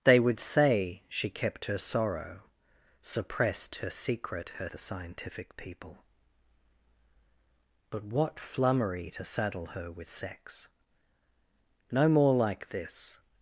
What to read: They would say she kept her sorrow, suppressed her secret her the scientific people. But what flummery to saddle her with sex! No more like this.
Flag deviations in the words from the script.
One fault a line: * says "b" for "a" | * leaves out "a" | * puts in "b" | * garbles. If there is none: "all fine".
all fine